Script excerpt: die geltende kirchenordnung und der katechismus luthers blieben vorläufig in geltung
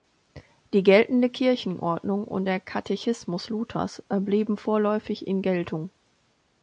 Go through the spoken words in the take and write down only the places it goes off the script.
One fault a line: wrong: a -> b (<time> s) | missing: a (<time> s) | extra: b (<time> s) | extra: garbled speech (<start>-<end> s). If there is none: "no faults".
no faults